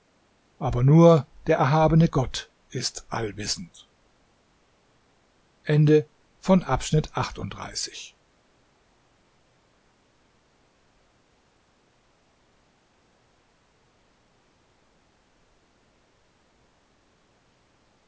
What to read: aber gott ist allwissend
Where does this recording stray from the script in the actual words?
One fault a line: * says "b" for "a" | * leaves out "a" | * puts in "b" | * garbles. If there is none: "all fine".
* puts in "nur der erhabene"